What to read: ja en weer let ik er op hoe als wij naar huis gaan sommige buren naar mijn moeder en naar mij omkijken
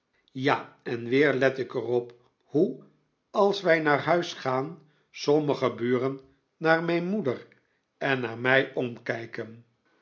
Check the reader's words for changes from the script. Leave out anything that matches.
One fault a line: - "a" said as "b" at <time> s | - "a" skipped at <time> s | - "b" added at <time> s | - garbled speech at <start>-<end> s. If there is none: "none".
none